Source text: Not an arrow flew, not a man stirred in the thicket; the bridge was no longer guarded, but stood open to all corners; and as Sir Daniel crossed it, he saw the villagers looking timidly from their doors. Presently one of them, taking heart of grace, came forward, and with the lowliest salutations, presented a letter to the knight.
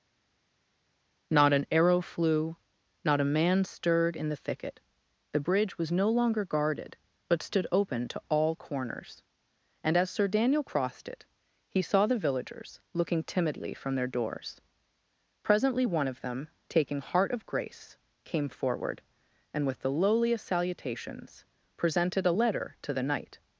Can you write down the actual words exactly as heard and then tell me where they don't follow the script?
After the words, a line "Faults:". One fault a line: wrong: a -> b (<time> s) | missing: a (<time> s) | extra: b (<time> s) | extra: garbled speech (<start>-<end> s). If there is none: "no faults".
Not an arrow flew, not a man stirred in the thicket; the bridge was no longer guarded, but stood open to all corners; and as Sir Daniel crossed it, he saw the villagers looking timidly from their doors. Presently one of them, taking heart of grace, came forward, and with the lowliest salutations, presented a letter to the knight.
Faults:
no faults